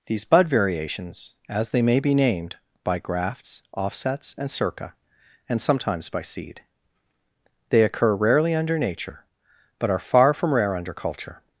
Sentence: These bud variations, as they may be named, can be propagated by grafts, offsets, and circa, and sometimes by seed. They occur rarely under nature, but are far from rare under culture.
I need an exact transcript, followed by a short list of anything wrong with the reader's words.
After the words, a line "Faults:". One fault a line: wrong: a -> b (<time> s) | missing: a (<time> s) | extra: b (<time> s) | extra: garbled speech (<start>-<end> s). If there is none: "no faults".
These bud variations, as they may be named, by grafts, offsets, and circa, and sometimes by seed. They occur rarely under nature, but are far from rare under culture.
Faults:
missing: can be propagated (2.6 s)